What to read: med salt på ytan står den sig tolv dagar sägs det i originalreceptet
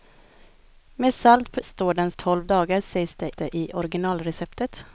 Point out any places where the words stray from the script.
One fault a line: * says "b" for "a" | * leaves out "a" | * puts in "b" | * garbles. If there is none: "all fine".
* leaves out "ytan"
* leaves out "sig"
* puts in "det"